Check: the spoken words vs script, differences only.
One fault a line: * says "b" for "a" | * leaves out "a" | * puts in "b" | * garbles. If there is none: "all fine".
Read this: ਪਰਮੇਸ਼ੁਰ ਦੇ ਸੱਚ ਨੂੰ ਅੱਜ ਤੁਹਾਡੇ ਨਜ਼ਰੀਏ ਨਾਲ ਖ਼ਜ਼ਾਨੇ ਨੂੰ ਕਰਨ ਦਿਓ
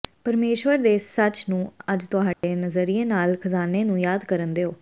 * puts in "ਯਾਦ"